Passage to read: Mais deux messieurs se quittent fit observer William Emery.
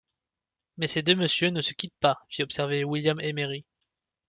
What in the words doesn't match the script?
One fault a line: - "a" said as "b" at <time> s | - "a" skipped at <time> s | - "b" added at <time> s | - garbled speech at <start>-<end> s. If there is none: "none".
- "ces" added at 0.9 s
- "ne" added at 1.5 s
- "pas" added at 2.0 s